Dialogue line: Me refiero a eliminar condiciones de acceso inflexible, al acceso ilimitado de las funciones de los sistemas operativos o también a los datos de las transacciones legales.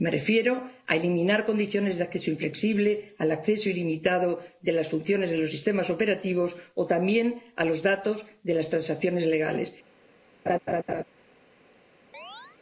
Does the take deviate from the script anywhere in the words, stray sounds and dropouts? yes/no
yes